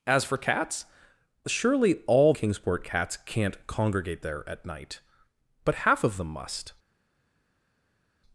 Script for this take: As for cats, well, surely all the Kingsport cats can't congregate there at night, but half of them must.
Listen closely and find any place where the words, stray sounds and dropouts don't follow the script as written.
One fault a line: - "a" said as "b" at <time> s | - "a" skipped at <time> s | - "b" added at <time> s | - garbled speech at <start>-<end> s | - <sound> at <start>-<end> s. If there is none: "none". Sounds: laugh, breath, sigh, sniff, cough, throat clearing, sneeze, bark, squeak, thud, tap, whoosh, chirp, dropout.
- "well" skipped at 0.8 s
- "the" skipped at 2.3 s